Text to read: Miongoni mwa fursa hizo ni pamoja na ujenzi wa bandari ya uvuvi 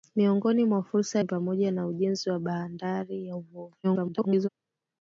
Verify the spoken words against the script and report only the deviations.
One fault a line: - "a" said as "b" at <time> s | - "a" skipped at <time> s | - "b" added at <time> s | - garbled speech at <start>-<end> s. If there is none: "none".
- "hizo" skipped at 1.2 s
- garbled speech at 3.8-4.5 s